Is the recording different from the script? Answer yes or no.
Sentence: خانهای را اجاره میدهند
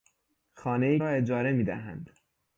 no